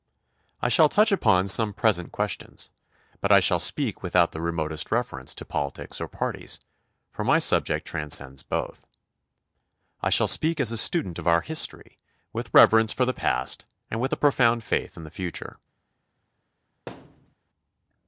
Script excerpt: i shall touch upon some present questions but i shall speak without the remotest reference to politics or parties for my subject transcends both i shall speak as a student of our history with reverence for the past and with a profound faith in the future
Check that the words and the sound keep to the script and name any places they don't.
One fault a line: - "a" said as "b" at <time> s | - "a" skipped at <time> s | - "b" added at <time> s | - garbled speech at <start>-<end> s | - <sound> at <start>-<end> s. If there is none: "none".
- thud at 16.9-17.4 s